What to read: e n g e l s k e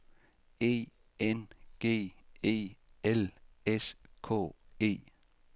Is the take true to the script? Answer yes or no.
yes